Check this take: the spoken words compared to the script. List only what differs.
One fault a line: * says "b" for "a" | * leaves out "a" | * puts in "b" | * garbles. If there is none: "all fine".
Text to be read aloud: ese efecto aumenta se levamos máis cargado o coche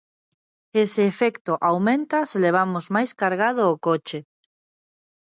all fine